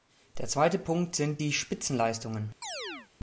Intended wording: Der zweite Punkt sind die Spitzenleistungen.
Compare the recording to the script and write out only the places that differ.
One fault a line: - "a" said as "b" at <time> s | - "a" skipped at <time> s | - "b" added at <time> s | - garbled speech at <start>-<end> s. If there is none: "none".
none